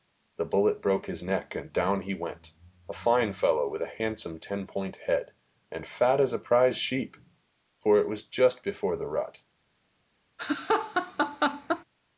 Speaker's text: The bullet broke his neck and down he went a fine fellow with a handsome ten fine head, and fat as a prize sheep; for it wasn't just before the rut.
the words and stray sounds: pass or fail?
fail